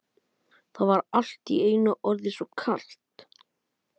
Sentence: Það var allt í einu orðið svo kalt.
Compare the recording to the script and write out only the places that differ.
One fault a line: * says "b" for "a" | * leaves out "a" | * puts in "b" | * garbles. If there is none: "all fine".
all fine